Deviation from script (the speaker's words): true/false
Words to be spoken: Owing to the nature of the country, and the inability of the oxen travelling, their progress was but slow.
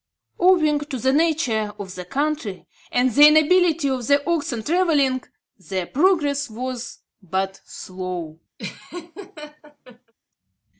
false